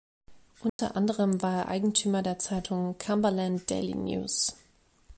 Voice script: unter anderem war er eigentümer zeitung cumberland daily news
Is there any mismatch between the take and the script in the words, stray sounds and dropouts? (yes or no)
yes